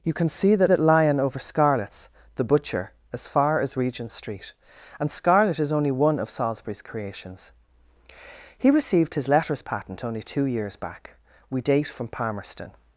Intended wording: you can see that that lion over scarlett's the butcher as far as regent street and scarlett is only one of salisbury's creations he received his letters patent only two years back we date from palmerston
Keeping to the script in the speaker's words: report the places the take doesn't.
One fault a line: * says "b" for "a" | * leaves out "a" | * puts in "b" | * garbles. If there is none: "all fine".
all fine